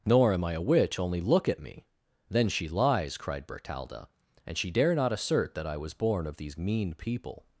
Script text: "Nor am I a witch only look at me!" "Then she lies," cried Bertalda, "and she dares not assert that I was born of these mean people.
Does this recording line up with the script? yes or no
no